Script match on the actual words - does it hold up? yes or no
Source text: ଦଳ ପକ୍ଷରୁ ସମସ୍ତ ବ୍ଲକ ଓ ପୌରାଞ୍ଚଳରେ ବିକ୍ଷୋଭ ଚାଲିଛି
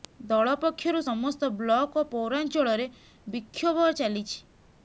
yes